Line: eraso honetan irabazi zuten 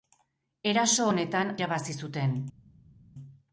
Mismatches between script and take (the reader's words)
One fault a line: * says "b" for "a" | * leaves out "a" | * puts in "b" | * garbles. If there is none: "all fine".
all fine